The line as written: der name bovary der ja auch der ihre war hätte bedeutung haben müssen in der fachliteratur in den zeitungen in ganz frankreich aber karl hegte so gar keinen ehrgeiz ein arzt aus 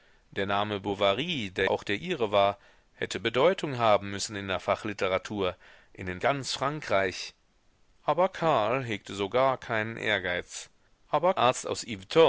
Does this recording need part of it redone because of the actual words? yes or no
yes